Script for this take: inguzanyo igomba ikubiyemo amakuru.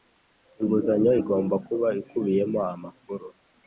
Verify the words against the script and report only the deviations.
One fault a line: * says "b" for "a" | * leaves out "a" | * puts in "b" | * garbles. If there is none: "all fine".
* puts in "kuba"